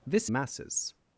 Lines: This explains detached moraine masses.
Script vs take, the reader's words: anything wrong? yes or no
yes